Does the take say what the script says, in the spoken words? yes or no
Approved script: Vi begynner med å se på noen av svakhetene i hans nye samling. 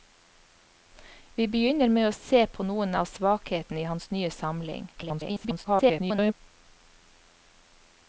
no